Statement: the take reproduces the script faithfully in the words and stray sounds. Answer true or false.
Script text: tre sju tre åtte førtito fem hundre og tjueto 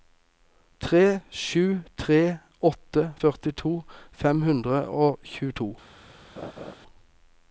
false